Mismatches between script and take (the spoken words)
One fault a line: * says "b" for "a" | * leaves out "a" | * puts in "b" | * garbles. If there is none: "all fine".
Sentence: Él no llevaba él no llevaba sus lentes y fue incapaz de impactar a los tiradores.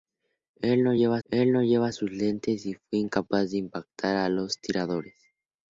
all fine